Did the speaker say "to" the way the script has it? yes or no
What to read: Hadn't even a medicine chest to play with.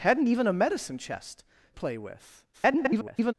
no